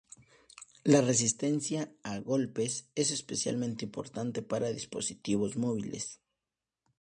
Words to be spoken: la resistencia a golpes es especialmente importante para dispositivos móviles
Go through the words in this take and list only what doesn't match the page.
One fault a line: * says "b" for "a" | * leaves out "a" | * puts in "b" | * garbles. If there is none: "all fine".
all fine